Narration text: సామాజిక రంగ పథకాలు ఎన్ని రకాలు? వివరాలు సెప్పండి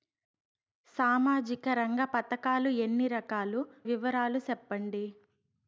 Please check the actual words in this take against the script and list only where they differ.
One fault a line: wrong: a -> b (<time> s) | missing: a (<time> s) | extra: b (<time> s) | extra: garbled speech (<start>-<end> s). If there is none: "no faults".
no faults